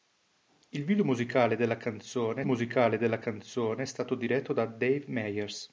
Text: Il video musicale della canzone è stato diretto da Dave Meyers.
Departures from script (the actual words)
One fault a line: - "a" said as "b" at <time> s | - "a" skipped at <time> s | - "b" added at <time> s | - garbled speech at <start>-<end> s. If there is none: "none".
- "musicale della canzone" added at 2.4 s